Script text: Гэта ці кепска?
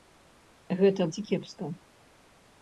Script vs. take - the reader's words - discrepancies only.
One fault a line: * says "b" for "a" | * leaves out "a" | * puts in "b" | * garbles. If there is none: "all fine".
all fine